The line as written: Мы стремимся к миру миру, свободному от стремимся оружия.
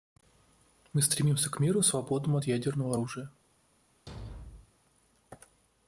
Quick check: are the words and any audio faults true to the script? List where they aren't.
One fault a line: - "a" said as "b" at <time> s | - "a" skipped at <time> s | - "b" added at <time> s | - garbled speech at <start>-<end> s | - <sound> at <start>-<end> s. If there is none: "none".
- "миру" skipped at 1.8 s
- "стремимся" said as "ядерного" at 2.4 s
- thud at 4.1-4.7 s